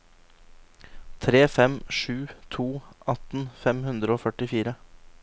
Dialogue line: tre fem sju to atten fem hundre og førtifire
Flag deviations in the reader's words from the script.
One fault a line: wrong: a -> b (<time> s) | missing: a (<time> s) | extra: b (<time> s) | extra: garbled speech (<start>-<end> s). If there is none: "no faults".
no faults